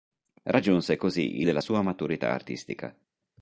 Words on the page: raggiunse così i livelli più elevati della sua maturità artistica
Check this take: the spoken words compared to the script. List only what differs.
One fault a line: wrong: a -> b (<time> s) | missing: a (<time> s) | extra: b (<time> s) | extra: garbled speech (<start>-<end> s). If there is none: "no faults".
missing: livelli più elevati (1.5 s)